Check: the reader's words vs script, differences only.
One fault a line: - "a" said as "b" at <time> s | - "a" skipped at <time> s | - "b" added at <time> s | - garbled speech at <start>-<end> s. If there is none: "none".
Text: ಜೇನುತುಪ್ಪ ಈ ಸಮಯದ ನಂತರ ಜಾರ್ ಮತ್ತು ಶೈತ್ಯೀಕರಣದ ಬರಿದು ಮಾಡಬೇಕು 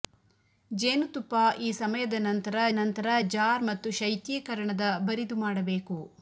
- "ನಂತರ" added at 2.7 s